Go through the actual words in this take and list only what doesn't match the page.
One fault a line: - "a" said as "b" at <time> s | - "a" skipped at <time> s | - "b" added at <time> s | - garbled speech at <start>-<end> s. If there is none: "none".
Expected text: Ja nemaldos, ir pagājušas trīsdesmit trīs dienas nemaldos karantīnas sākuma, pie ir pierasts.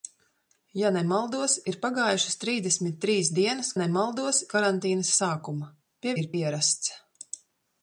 none